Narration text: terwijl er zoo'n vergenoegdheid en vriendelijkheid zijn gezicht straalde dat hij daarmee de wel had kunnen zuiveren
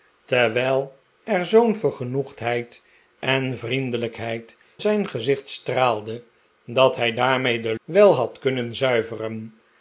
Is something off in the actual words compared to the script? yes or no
no